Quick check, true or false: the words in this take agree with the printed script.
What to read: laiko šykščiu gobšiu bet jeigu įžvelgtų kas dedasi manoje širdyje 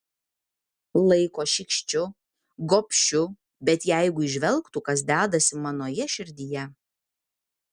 true